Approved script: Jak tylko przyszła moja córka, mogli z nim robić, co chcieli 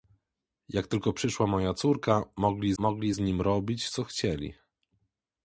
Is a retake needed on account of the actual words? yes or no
yes